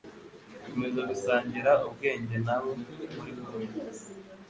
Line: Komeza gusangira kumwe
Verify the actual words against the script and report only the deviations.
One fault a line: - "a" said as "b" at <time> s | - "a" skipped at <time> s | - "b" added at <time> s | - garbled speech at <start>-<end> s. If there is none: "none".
- "ubwenge nabo muri" added at 1.9 s